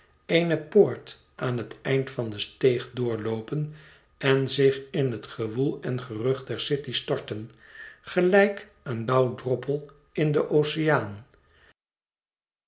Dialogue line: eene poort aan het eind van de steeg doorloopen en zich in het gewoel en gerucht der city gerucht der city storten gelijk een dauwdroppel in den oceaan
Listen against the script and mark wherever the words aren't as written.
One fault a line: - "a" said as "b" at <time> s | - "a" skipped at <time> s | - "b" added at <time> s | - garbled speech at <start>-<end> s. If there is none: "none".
- "gerucht der city" skipped at 6.9 s